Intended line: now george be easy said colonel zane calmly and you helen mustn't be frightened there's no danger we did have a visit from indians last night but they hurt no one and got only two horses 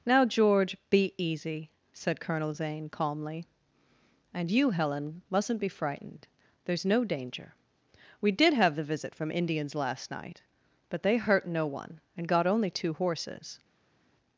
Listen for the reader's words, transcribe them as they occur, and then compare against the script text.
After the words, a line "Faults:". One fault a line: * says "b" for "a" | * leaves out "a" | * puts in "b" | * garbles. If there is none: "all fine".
now george be easy said colonel zane calmly and you helen mustn't be frightened there's no danger we did have the visit from indians last night but they hurt no one and got only two horses
Faults:
* says "the" for "a"